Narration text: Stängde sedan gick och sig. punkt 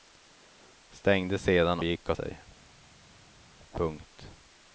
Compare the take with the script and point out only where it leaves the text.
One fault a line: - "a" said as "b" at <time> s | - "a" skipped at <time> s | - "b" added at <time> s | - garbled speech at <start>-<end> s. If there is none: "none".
none